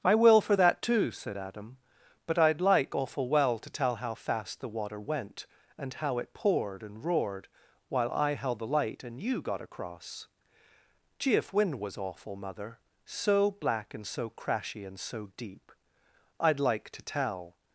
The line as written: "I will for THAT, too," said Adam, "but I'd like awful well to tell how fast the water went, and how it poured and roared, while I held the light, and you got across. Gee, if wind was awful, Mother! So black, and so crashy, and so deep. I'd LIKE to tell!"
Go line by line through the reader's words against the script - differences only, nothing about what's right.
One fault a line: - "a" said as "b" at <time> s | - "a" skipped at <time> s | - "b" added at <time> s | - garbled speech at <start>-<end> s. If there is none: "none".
none